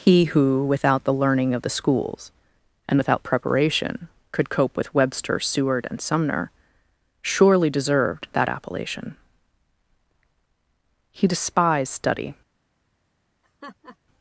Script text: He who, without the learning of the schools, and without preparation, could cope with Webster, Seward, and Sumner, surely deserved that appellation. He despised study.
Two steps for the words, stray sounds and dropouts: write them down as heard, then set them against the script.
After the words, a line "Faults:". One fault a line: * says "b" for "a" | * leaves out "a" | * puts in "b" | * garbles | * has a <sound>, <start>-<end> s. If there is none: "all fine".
He who, without the learning of the schools, and without preparation, could cope with Webster, Seward, and Sumner, surely deserved that appellation. He despised study.
Faults:
* has a laugh, 13.4-14.0 s